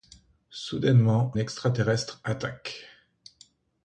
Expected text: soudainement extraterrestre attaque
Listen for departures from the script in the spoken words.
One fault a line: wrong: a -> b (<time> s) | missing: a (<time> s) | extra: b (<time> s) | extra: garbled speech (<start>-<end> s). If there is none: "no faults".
no faults